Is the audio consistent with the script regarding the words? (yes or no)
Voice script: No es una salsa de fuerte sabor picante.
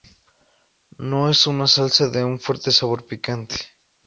no